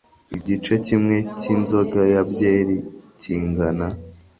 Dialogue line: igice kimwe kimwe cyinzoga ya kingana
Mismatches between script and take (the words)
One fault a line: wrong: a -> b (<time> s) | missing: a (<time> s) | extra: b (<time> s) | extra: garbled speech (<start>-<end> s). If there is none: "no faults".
missing: kimwe (1.2 s)
extra: byeri (2.3 s)